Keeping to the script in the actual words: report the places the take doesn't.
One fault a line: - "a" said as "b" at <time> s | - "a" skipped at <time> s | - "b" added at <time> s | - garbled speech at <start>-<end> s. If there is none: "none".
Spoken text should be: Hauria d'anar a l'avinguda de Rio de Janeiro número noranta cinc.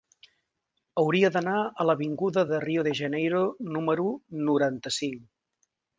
none